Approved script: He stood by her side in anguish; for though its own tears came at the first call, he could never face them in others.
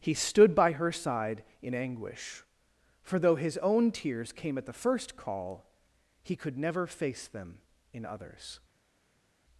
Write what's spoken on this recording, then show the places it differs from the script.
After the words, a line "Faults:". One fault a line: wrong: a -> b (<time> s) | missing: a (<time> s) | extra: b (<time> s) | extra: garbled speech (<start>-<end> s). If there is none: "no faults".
He stood by her side in anguish; for though his own tears came at the first call, he could never face them in others.
Faults:
wrong: its -> his (3.4 s)